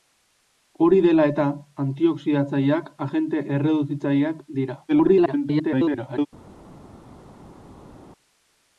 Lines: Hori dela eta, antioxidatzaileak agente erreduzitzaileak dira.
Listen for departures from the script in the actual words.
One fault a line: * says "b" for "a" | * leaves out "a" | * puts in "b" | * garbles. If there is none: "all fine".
* garbles